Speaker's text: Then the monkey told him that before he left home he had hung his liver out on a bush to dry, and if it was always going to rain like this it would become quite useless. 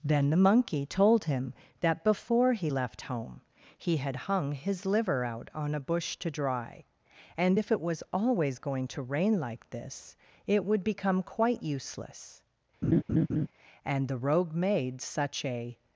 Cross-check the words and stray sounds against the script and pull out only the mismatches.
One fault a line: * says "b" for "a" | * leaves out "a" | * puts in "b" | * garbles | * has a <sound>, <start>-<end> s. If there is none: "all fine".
* has a laugh, 12.8-13.5 s
* puts in "And the rogue made such a"